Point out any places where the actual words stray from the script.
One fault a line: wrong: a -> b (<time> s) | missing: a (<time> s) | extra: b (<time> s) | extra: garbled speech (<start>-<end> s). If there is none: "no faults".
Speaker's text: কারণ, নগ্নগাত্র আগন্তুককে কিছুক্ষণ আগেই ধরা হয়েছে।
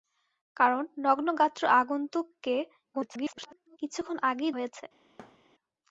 extra: garbled speech (2.9-3.8 s)
missing: ধরা (4.5 s)